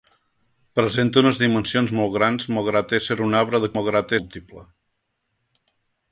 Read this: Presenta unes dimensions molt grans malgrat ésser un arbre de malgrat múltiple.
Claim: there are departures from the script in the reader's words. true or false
false